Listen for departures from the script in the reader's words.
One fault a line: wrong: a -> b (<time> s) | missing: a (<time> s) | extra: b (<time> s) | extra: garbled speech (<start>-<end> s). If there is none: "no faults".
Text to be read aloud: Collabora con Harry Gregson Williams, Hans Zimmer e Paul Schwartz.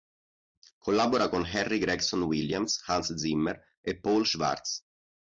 no faults